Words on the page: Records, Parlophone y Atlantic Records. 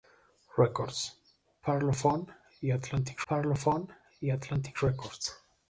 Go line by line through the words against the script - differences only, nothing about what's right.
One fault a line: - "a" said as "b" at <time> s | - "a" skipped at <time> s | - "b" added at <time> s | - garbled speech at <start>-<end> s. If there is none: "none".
- "Parlophone y Atlantic" added at 3.3 s